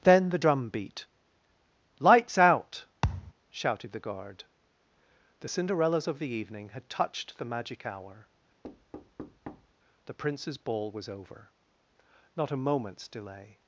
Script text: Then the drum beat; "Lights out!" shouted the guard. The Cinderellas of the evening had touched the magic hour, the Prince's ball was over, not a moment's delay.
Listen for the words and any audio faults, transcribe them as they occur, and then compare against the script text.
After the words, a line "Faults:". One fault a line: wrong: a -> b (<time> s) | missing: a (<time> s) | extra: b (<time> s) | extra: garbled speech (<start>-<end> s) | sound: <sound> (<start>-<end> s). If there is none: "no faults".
Then the drum beat; "Lights out!" shouted the guard. The Cinderellas of the evening had touched the magic hour, the Prince's ball was over, not a moment's delay.
Faults:
sound: thud (3.0-3.3 s)
sound: thud (8.6-9.7 s)